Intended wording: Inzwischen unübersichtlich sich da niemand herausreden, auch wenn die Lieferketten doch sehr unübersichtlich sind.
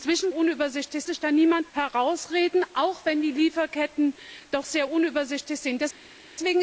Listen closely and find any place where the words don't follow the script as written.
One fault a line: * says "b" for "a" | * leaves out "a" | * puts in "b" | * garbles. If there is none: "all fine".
all fine